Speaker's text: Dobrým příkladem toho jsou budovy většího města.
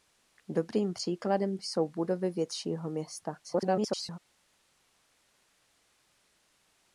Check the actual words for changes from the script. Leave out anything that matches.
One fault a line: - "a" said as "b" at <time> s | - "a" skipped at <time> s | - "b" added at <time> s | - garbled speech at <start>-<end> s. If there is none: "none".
- "toho" skipped at 1.6 s
- garbled speech at 3.4-4.2 s